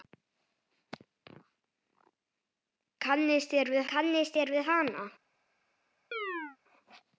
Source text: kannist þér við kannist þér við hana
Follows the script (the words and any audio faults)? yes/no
no